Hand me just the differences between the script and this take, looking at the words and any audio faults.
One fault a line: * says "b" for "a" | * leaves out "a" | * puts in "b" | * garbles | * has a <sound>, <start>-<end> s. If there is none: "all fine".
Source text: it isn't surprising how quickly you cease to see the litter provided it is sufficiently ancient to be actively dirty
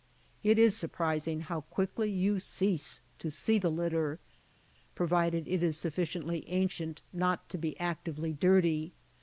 * says "is" for "isn't"
* puts in "not"